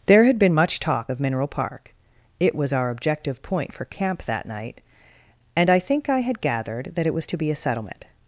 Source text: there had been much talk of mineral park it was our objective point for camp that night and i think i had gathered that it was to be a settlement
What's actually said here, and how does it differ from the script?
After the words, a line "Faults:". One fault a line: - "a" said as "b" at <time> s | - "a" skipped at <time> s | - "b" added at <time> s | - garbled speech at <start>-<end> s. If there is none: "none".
there had been much talk of mineral park it was our objective point for camp that night and i think i had gathered that it was to be a settlement
Faults:
none